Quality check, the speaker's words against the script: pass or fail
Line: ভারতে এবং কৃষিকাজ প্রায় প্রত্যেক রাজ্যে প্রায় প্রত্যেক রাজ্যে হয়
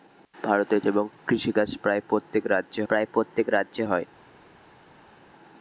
pass